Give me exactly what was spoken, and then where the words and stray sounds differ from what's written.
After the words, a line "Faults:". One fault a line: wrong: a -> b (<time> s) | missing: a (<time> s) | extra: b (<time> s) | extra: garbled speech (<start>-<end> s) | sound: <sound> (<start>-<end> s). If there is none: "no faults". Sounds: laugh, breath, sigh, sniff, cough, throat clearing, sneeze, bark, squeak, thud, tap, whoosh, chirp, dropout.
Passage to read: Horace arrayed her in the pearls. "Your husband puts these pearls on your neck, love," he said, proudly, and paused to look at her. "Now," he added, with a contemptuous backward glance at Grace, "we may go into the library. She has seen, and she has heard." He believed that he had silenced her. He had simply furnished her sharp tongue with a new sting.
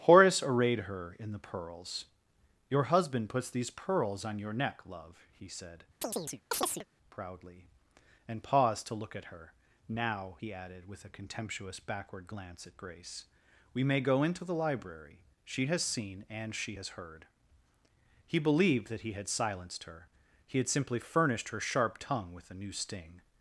Horace arrayed her in the pearls. "Your husband puts these pearls on your neck, love," he said, proudly, and paused to look at her. "Now," he added, with a contemptuous backward glance at Grace, "we may go into the library. She has seen, and she has heard." He believed that he had silenced her. He had simply furnished her sharp tongue with a new sting.
Faults:
sound: chirp (6.0-6.9 s)